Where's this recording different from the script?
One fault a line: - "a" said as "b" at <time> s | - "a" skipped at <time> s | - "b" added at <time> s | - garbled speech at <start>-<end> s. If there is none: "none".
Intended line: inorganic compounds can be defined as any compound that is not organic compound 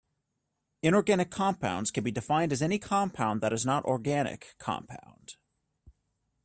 none